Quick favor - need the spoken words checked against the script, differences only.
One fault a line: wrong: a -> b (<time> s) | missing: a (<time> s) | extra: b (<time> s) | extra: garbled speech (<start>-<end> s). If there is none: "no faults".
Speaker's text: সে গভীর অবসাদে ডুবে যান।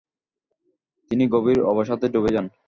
wrong: সে -> তিনি (1.1 s)